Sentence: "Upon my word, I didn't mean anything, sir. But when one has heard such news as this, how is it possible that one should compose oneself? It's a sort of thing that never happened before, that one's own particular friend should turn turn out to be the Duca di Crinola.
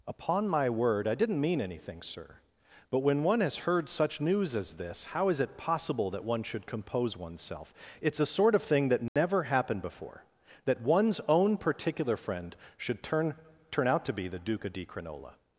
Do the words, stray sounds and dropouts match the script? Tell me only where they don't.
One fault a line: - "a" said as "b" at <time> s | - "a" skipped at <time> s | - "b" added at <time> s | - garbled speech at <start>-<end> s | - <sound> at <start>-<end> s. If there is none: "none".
- dropout at 9.1-9.2 s